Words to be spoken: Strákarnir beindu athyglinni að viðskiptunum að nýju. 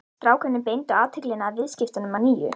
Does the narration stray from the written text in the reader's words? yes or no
no